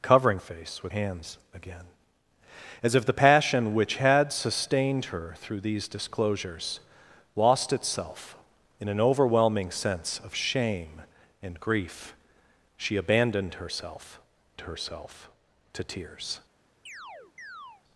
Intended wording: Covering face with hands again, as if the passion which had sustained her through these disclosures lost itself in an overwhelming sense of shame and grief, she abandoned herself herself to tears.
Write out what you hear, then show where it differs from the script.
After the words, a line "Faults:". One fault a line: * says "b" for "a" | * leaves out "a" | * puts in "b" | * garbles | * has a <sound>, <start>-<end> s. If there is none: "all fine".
Covering face with hands again, as if the passion which had sustained her through these disclosures lost itself in an overwhelming sense of shame and grief, she abandoned herself herself to tears.
Faults:
* has a chirp, 16.9-17.8 s